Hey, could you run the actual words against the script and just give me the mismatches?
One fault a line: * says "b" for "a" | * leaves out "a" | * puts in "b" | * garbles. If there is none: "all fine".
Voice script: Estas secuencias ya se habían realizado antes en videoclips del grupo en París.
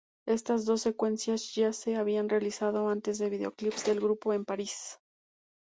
* puts in "dos"